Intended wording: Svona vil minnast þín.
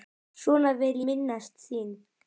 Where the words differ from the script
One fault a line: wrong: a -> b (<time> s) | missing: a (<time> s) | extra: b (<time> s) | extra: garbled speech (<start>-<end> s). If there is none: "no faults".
no faults